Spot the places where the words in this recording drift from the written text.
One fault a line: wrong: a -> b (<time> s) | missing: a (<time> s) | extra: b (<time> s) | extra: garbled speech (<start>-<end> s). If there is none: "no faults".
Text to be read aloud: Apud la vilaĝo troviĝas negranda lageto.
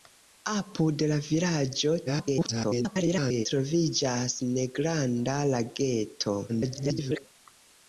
extra: garbled speech (2.1-3.5 s)
extra: garbled speech (6.5-7.2 s)